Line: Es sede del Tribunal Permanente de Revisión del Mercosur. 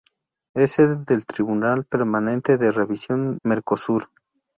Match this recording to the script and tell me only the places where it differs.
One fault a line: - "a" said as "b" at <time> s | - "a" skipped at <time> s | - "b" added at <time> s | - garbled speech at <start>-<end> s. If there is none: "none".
- "del" skipped at 3.4 s